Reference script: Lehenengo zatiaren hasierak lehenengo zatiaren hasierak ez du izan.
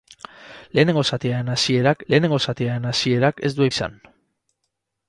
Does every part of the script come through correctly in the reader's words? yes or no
yes